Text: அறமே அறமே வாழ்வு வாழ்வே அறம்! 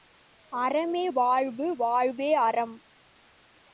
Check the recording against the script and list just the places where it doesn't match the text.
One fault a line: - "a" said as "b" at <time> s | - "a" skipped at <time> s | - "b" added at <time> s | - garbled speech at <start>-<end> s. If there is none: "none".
- "அறமே" skipped at 1.0 s